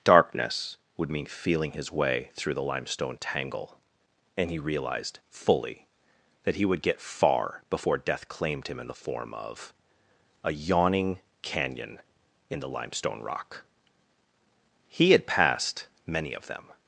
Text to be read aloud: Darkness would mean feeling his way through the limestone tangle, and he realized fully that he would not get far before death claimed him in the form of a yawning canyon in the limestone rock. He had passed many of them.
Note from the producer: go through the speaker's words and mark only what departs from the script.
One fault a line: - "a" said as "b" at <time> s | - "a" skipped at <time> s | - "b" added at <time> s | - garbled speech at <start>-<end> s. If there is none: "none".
- "not" skipped at 6.8 s